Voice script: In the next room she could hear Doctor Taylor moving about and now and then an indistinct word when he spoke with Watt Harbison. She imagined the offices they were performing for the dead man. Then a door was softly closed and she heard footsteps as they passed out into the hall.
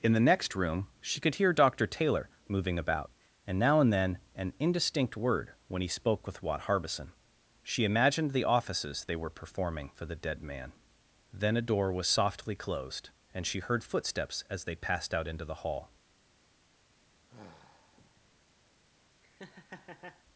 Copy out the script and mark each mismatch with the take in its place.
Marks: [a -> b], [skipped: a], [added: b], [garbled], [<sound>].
In the next room she could hear Doctor Taylor moving about and now and then an indistinct word when he spoke with Watt Harbison. She imagined the offices they were performing for the dead man. Then a door was softly closed and she heard footsteps as they passed out into the hall. [sigh] [laugh]